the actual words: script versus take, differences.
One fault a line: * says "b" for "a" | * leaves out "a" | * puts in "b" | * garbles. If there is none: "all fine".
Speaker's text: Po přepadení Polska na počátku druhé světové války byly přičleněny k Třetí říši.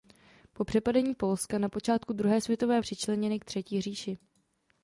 * leaves out "války byly"